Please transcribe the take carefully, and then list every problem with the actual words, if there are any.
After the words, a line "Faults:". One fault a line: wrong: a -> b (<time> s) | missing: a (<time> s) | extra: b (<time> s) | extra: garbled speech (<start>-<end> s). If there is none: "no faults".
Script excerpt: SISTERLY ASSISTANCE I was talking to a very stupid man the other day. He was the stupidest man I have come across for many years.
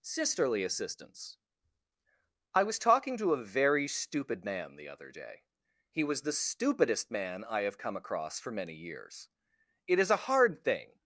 SISTERLY ASSISTANCE I was talking to a very stupid man the other day. He was the stupidest man I have come across for many years. It is a hard thing
Faults:
extra: It is a hard thing (9.8 s)